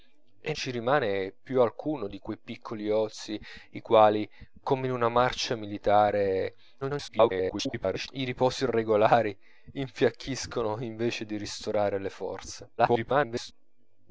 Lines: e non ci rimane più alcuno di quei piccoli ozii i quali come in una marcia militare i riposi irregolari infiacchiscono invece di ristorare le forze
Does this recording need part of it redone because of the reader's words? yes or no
yes